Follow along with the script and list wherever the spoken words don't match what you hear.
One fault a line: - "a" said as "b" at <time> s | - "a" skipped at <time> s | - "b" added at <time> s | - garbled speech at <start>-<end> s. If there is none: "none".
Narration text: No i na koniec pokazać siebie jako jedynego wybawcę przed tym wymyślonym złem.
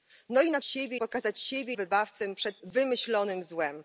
- "koniec" said as "siebie" at 0.6 s
- "jako jedynego" skipped at 1.7 s
- "tym" skipped at 2.6 s